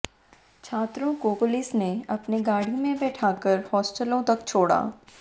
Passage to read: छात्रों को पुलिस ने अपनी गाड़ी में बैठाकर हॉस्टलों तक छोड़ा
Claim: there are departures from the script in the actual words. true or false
false